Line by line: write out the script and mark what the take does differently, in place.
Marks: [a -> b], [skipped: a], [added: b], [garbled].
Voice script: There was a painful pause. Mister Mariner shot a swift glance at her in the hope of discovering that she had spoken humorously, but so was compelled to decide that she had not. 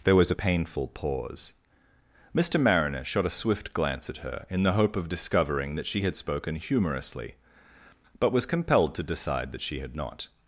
There was a painful pause. Mister Mariner shot a swift glance at her in the hope of discovering that she had spoken humorously, but [skipped: so] was compelled to decide that she had not.